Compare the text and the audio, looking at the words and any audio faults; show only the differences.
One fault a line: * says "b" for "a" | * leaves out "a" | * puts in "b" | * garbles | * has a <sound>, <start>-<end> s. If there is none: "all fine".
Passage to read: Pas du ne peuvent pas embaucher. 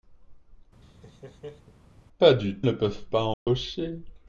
* has a laugh, 0.8-1.7 s
* has a dropout, 3.3-3.5 s